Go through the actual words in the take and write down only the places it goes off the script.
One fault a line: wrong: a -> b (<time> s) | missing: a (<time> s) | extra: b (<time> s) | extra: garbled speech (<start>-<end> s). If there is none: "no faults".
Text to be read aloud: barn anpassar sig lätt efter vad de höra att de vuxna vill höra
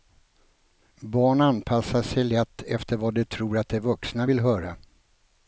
wrong: höra -> tror (3.2 s)